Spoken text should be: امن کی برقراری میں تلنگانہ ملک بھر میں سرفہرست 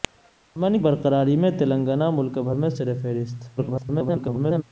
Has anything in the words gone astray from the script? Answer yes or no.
yes